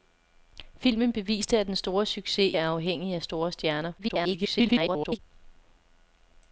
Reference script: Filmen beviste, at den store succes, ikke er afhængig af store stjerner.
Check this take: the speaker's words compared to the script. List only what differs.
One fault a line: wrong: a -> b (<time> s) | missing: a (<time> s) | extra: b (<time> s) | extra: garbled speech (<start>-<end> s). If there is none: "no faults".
missing: ikke (2.5 s)
extra: garbled speech (4.0-5.2 s)